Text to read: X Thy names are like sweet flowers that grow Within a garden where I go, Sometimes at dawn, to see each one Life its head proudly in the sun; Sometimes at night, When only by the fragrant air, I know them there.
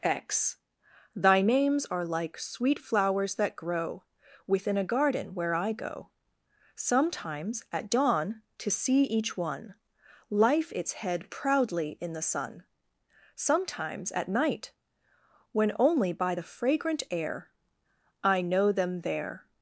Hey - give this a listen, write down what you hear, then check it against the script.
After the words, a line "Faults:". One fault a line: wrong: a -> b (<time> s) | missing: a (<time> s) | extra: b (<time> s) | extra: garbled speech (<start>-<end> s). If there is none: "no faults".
X Thy names are like sweet flowers that grow Within a garden where I go, Sometimes at dawn, to see each one Life its head proudly in the sun; Sometimes at night, When only by the fragrant air, I know them there.
Faults:
no faults